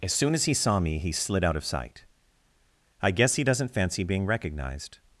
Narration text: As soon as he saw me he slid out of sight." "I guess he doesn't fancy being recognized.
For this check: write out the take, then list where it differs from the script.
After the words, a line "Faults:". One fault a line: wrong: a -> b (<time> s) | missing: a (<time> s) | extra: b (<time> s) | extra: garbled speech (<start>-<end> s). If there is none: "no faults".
As soon as he saw me he slid out of sight." "I guess he doesn't fancy being recognized.
Faults:
no faults